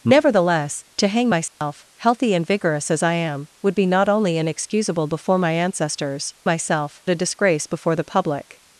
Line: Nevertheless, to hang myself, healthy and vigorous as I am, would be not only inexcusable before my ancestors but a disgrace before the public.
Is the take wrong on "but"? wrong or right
wrong